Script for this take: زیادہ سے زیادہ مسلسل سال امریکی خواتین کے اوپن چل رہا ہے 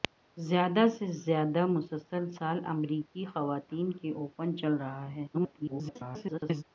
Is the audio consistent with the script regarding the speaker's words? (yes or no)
no